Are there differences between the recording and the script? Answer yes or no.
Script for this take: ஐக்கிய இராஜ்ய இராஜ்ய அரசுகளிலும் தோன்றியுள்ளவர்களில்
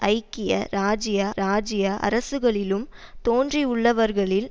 no